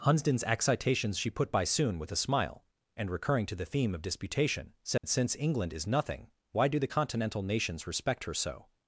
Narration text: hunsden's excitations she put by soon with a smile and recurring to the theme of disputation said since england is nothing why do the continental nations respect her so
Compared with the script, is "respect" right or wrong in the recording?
right